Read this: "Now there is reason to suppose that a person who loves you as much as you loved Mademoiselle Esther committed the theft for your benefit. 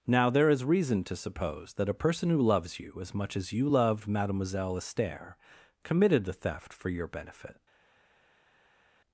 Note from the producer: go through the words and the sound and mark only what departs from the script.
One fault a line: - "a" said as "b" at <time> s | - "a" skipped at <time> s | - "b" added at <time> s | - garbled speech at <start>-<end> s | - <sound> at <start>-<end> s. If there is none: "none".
none